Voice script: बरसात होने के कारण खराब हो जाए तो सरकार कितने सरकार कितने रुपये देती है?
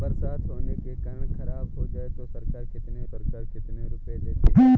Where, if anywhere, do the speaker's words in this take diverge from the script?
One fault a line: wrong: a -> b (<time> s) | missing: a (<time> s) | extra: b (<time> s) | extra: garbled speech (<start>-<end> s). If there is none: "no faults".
no faults